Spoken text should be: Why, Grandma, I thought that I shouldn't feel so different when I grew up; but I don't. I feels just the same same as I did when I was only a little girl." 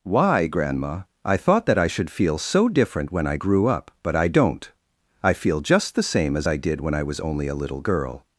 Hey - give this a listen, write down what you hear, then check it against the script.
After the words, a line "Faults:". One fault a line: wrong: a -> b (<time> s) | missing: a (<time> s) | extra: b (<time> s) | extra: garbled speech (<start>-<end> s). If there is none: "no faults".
Why, Grandma, I thought that I should feel so different when I grew up; but I don't. I feel just the same as I did when I was only a little girl."
Faults:
wrong: shouldn't -> should (1.9 s)
wrong: feels -> feel (5.3 s)
missing: same (6.4 s)